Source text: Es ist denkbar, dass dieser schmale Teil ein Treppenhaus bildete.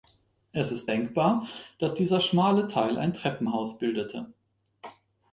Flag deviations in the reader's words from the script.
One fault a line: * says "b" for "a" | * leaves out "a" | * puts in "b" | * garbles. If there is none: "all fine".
all fine